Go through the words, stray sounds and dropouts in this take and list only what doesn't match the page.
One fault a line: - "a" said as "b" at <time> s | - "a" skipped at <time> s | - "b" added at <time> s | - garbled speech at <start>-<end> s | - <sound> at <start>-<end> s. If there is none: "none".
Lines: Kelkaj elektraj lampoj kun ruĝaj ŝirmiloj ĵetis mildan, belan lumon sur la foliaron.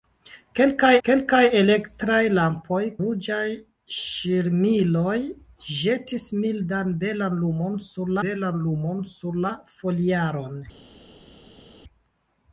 - "kelkaj" added at 1.1 s
- "kun" skipped at 2.8 s
- "belan lumon sur" added at 8.3 s